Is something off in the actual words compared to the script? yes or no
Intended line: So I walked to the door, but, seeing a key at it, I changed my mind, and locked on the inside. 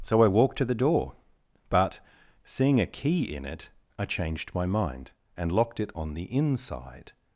yes